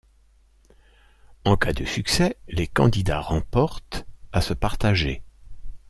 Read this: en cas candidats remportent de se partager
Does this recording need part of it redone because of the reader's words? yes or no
yes